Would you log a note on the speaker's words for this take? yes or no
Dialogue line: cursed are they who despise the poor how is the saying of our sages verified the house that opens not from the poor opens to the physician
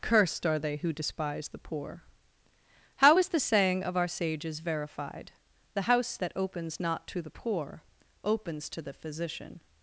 yes